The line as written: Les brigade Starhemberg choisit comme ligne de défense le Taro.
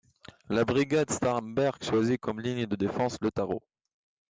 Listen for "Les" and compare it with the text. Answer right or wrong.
wrong